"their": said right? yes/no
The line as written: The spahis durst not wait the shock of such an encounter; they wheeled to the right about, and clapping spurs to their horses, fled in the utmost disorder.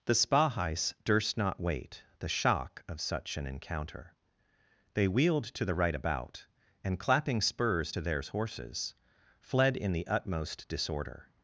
no